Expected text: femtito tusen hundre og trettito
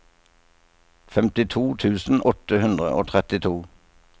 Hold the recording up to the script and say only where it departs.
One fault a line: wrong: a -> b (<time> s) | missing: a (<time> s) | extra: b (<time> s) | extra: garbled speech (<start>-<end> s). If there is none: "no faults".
extra: åtte (2.3 s)